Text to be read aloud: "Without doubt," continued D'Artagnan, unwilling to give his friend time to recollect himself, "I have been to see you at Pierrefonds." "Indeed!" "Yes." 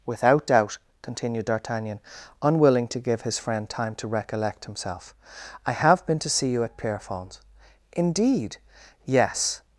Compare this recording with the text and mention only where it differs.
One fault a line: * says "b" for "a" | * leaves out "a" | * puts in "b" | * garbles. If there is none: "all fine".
all fine